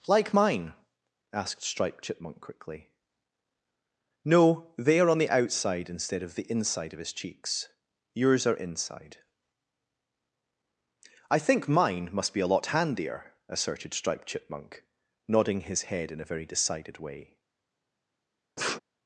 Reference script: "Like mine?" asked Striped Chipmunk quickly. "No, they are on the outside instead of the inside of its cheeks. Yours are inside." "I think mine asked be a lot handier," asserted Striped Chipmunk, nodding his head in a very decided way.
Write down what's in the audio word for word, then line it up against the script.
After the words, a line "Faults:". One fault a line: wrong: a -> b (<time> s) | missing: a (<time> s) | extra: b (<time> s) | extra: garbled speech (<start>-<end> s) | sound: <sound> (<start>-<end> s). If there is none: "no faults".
"Like mine?" asked Striped Chipmunk quickly. "No, they are on the outside instead of the inside of his cheeks. Yours are inside." "I think mine must be a lot handier," asserted Striped Chipmunk, nodding his head in a very decided way.
Faults:
wrong: its -> his (7.0 s)
wrong: asked -> must (12.1 s)
sound: sniff (18.6-18.8 s)